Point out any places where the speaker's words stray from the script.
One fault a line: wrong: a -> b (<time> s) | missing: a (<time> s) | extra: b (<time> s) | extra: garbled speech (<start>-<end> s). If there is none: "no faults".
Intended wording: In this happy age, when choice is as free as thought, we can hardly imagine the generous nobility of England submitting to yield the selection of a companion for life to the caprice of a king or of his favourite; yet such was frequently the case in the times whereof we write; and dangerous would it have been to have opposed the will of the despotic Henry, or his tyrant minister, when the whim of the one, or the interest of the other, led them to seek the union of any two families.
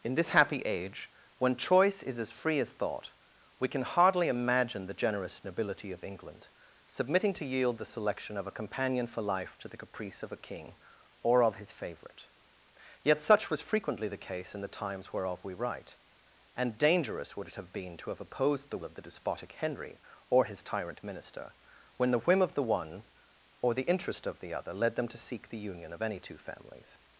missing: will (18.8 s)